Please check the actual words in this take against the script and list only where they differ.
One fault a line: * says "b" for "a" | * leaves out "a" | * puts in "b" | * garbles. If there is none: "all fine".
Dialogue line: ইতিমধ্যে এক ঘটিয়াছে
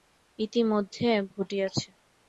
all fine